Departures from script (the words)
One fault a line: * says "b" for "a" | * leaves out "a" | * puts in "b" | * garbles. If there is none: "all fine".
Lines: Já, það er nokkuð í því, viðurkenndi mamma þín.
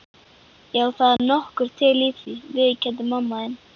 * puts in "til"